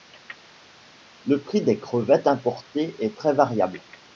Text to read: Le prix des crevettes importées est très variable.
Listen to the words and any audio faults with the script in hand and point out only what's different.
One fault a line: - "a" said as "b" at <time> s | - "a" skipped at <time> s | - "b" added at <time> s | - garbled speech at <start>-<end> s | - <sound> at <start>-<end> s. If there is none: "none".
none